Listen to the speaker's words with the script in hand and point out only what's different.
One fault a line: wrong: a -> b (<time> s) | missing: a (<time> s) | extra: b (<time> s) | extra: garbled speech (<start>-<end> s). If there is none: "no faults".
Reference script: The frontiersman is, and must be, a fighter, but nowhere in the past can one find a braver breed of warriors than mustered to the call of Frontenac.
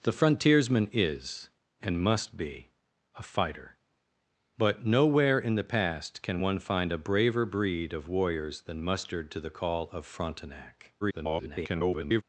extra: garbled speech (11.0-12.2 s)